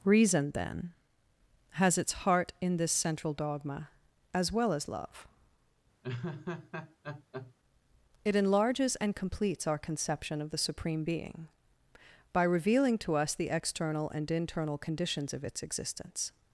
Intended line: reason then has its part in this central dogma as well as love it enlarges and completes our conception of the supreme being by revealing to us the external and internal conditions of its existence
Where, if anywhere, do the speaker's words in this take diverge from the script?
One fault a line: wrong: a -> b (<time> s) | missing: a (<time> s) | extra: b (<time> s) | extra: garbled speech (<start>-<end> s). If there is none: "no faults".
wrong: part -> heart (2.1 s)